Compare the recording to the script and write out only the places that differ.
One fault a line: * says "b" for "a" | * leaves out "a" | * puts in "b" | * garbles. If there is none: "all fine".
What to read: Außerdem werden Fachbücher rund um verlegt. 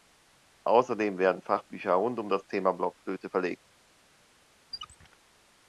* puts in "das Thema Blockflöte"